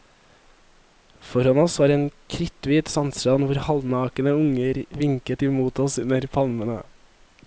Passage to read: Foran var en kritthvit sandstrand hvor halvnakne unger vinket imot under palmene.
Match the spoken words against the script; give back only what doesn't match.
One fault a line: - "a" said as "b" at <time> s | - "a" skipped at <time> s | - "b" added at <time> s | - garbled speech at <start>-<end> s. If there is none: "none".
- "oss" added at 1.6 s
- "oss" added at 5.8 s